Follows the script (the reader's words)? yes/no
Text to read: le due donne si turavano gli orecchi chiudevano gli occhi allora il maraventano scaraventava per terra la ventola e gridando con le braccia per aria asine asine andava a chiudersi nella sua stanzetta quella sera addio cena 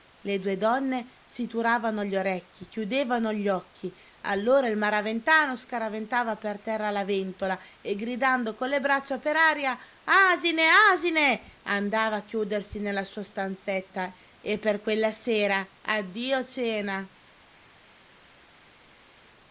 no